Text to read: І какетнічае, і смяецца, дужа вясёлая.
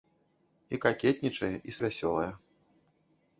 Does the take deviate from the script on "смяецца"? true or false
true